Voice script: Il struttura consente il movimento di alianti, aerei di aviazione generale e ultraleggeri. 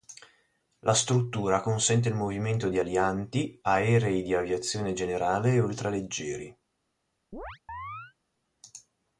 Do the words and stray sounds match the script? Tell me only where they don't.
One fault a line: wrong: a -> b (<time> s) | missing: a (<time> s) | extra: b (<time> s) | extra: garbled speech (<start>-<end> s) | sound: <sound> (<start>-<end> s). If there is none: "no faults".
wrong: Il -> La (0.8 s)
sound: chirp (7.3-8.1 s)